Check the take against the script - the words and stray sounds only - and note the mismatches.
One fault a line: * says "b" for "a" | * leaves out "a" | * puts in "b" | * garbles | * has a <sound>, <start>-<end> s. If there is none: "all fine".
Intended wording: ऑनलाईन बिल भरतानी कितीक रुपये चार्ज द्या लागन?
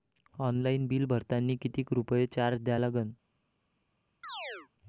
* has a chirp, 4.2-4.7 s